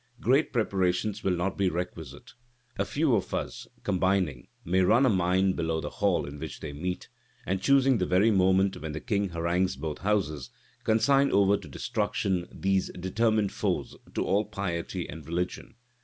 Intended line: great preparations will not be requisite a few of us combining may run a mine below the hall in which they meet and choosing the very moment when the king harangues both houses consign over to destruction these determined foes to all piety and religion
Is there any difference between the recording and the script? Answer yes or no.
no